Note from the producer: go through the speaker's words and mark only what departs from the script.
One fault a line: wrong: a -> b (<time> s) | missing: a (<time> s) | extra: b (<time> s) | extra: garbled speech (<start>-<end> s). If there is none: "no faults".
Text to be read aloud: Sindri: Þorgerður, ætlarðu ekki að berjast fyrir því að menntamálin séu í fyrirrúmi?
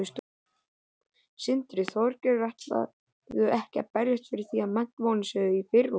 no faults